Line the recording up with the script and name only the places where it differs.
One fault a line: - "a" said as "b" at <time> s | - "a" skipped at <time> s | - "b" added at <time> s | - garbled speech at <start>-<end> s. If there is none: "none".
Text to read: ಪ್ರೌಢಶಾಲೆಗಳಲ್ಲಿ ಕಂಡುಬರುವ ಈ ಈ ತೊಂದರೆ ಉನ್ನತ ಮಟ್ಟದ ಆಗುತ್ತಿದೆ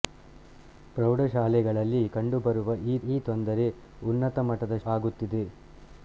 none